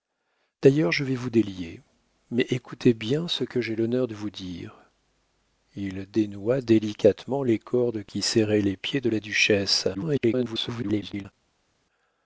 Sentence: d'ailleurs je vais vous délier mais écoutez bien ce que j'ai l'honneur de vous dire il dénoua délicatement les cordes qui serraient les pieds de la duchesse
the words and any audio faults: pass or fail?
fail